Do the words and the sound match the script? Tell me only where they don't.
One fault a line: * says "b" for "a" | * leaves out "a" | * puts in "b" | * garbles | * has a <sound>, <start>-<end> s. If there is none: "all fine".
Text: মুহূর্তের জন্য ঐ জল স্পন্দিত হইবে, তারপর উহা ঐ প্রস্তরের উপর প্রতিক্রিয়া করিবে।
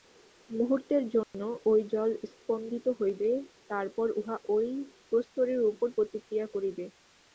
* has a dropout, 1.2-1.3 s